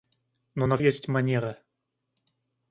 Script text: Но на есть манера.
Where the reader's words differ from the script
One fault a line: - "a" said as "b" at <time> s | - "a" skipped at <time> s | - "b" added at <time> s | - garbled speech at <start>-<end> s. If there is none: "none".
none